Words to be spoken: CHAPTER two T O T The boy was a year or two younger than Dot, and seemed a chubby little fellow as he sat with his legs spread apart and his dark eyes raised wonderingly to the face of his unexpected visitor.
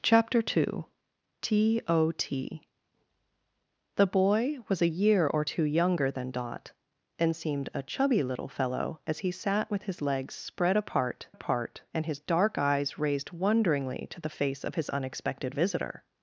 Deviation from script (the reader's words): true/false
true